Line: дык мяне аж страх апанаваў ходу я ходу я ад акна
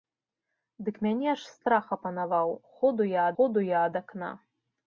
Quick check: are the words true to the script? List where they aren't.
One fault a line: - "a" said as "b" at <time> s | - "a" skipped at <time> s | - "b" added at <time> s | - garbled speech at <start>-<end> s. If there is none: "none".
none